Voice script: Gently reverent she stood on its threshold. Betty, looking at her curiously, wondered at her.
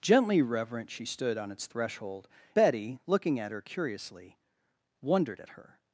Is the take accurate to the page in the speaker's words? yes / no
yes